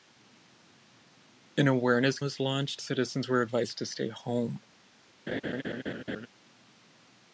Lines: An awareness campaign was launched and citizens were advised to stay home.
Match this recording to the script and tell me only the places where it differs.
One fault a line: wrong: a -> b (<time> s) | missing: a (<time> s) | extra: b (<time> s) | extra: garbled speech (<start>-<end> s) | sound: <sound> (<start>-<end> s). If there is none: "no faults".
missing: campaign (2.2 s)
missing: and (2.8 s)
sound: laugh (5.3-6.3 s)